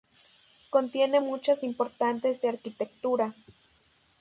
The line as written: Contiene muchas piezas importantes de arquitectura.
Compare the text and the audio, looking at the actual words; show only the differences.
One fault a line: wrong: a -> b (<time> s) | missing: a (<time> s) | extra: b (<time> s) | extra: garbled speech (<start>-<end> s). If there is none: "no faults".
missing: piezas (1.6 s)